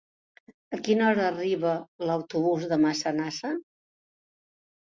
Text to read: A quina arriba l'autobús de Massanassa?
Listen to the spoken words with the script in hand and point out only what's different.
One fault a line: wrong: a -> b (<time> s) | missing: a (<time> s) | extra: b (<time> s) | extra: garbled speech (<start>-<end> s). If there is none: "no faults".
extra: hora (1.1 s)